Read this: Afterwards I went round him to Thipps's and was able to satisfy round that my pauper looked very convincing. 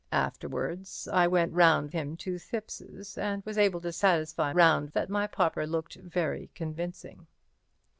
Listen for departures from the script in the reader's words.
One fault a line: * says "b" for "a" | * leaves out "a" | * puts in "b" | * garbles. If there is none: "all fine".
all fine